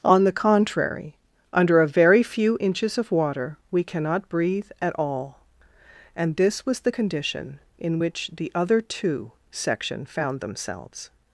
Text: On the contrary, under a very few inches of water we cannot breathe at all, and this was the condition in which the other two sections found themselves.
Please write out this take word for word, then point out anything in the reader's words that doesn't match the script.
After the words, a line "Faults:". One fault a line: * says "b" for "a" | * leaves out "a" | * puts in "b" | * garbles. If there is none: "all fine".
On the contrary, under a very few inches of water we cannot breathe at all, and this was the condition in which the other two section found themselves.
Faults:
* says "section" for "sections"